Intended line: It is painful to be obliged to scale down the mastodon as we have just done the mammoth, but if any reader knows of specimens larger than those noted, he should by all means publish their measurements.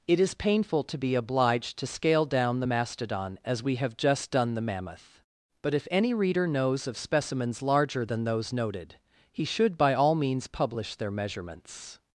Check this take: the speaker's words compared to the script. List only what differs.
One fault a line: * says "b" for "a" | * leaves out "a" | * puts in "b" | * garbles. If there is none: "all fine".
all fine